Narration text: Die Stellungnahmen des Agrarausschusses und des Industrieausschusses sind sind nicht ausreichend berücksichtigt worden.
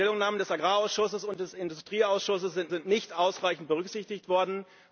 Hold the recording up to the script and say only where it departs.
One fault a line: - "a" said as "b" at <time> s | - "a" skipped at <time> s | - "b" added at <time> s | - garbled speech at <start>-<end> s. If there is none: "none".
none